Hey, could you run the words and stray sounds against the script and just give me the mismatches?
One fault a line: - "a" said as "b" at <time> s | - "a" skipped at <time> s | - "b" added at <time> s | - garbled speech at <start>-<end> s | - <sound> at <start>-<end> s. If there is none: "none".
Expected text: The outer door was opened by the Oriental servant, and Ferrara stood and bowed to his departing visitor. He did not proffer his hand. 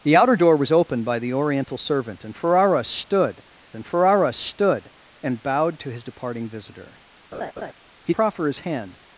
- "Ferrara stood and" added at 3.9 s
- laugh at 7.3-7.7 s
- "did not" skipped at 8.1 s